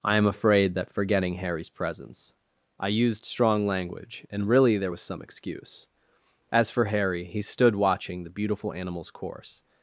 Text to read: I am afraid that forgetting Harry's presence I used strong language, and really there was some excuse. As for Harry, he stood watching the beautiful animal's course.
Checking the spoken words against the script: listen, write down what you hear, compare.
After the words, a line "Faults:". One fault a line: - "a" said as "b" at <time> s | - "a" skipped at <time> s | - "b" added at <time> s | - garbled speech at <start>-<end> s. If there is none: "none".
I am afraid that forgetting Harry's presence I used strong language, and really there was some excuse. As for Harry, he stood watching the beautiful animal's course.
Faults:
none